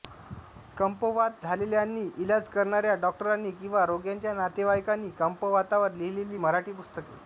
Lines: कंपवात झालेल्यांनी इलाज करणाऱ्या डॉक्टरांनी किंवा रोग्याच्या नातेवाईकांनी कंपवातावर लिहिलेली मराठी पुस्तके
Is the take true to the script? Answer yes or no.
yes